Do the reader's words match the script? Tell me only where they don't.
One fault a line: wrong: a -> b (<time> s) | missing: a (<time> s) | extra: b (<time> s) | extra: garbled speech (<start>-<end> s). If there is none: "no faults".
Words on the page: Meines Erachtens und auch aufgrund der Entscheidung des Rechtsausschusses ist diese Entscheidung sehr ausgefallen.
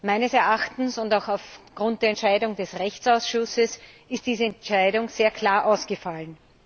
extra: klar (5.3 s)